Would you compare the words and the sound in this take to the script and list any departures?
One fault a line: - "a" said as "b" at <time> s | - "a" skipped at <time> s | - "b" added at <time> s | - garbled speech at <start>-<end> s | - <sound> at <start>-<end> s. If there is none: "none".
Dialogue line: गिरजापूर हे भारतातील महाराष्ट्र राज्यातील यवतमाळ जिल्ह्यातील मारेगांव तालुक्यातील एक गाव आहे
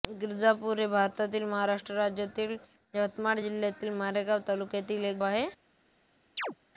- "गाव" skipped at 5.2 s
- chirp at 6.4-6.6 s